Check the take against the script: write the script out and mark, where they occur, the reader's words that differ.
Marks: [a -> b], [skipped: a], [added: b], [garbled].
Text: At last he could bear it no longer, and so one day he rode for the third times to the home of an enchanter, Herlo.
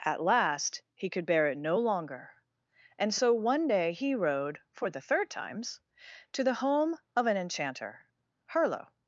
At last he could bear it no longer, and so one day he rode for the third times to the home of an enchanter, Herlo.